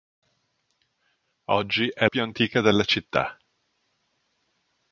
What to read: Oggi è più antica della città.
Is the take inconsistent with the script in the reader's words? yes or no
no